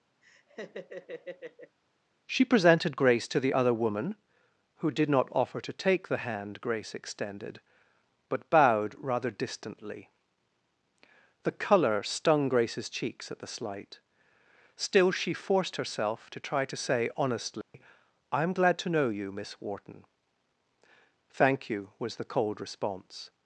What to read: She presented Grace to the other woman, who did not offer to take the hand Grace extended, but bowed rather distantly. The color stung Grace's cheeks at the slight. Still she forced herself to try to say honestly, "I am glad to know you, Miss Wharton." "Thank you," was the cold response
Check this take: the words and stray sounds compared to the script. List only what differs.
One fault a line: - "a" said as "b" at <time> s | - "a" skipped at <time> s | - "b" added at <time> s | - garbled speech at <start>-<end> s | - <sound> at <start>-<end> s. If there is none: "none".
- laugh at 0.2-1.8 s
- dropout at 17.6-17.7 s